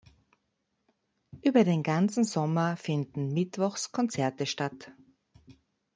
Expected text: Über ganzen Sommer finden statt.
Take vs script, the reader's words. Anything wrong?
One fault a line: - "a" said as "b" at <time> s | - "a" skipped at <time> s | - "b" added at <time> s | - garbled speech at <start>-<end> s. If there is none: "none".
- "den" added at 1.6 s
- "mittwochs Konzerte" added at 3.3 s